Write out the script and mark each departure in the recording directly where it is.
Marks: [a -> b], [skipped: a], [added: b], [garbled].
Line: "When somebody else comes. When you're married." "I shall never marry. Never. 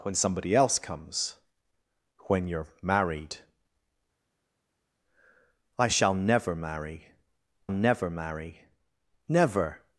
"When somebody else comes. When you're married." "I shall never marry. Never. [added: marry Never]